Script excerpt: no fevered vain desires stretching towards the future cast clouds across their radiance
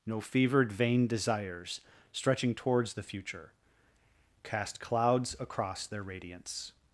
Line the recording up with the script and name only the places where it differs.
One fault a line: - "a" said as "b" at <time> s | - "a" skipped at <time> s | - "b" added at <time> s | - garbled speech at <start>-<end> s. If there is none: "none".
none